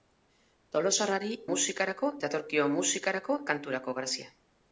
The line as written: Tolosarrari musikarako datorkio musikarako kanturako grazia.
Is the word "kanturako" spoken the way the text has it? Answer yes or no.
yes